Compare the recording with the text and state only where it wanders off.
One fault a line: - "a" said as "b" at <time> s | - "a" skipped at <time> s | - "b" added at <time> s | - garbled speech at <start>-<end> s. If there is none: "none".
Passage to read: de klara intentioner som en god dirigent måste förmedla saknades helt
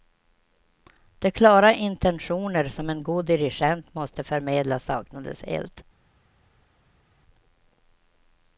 none